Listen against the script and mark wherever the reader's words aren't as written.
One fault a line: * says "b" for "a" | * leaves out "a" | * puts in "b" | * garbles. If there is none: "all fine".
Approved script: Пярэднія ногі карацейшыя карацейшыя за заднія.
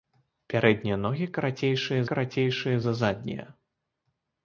all fine